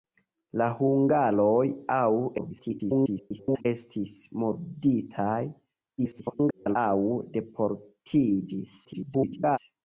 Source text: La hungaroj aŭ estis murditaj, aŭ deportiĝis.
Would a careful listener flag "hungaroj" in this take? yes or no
no